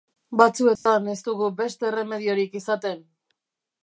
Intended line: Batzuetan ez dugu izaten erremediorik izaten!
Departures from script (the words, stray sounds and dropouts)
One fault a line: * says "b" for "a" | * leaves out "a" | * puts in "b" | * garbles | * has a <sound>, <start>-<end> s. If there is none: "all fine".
* has a dropout, 0.8-0.9 s
* says "beste" for "izaten"